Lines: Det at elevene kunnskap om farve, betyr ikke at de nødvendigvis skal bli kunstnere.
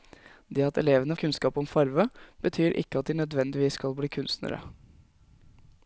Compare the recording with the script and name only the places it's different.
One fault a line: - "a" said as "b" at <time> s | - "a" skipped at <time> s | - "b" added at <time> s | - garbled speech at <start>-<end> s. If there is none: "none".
none